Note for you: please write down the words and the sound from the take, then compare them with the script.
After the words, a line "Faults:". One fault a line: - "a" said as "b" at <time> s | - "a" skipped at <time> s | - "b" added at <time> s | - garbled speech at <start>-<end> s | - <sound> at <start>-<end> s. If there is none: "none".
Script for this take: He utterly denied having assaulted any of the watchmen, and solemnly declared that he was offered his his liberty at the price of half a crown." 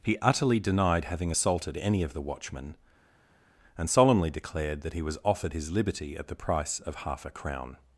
He utterly denied having assaulted any of the watchmen, and solemnly declared that he was offered his liberty at the price of half a crown."
Faults:
- "his" skipped at 5.7 s